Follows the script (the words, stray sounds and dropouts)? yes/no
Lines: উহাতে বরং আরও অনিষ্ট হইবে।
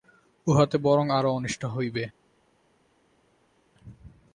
yes